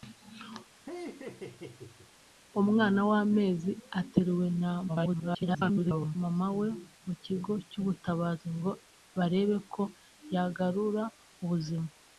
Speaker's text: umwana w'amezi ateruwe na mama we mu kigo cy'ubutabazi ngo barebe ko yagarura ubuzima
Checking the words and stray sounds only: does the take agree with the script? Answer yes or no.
no